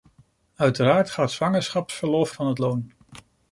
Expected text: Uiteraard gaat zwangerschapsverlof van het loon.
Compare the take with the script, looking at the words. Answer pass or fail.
pass